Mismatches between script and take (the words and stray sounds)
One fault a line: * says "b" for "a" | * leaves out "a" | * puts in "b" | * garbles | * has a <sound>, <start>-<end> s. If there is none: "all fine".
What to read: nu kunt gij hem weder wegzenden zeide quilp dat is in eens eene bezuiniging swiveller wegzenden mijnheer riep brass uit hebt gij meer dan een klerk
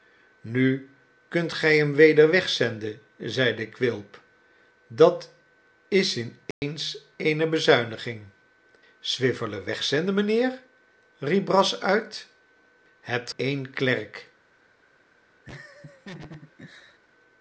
* has a dropout, 6.5-6.6 s
* leaves out "gij meer dan"
* has a laugh, 15.5-17.0 s